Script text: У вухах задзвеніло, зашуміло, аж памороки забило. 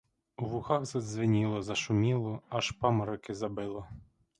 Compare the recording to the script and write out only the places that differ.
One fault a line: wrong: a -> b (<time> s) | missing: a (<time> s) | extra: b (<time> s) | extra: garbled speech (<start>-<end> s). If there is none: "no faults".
no faults